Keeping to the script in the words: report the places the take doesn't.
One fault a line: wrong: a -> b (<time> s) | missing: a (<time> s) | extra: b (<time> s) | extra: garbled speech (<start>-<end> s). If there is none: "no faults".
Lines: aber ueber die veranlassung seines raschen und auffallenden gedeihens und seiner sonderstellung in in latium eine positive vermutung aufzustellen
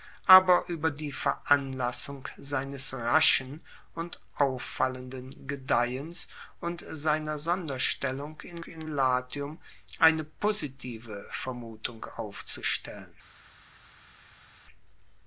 no faults